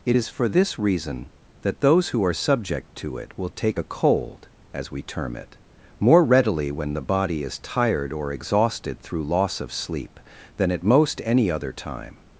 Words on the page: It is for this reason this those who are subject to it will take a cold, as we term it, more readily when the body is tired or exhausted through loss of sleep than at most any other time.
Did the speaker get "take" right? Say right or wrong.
right